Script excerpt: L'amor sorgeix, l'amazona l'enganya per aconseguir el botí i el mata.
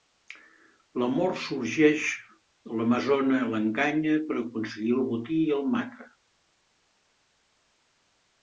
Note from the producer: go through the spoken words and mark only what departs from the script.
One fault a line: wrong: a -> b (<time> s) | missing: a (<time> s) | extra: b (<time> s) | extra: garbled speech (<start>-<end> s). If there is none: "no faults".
no faults